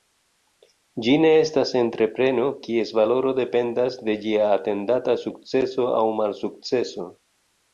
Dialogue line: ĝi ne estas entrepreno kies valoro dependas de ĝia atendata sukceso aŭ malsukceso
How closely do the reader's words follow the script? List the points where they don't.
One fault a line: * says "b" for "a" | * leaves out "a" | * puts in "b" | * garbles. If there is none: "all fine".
all fine